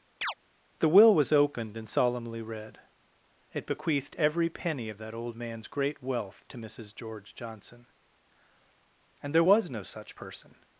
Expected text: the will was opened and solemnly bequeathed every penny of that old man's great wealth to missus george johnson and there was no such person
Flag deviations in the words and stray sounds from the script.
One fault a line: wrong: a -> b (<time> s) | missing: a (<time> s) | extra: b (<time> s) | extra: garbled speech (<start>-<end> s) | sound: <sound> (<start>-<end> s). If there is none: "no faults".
sound: chirp (0.2-0.3 s)
extra: read it (2.4 s)